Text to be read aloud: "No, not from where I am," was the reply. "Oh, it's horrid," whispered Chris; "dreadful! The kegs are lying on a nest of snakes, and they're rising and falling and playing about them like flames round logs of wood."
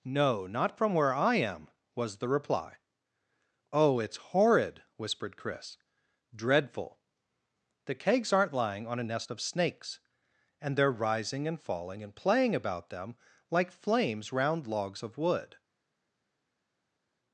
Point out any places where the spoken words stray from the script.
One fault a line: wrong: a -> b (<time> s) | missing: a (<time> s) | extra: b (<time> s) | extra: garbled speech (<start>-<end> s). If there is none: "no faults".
wrong: are -> aren't (8.3 s)